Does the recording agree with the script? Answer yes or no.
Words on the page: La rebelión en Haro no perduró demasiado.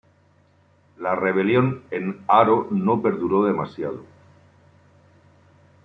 yes